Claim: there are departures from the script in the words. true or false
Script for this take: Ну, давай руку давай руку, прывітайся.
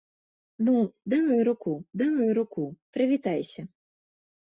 false